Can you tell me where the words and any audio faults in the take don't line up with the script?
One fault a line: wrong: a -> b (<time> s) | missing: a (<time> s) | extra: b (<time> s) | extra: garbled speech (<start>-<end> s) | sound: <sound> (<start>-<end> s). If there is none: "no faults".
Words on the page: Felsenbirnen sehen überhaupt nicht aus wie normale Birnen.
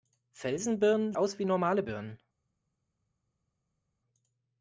missing: sehen überhaupt nicht (1.1 s)